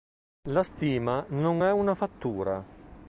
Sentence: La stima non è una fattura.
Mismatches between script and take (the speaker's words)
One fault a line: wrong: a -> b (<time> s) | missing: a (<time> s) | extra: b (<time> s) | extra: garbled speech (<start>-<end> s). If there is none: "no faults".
no faults